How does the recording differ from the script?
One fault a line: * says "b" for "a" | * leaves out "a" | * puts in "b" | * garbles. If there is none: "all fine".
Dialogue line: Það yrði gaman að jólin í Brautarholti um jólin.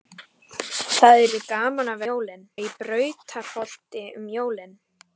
all fine